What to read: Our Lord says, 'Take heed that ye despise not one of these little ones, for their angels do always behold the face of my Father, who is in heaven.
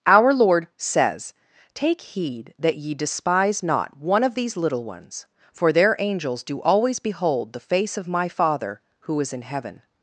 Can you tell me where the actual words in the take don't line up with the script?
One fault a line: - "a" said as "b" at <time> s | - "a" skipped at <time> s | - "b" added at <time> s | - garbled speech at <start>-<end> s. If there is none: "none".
none